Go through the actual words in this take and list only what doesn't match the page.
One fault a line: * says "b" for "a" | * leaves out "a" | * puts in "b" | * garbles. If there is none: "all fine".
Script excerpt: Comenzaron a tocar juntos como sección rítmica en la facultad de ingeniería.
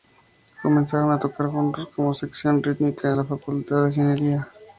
all fine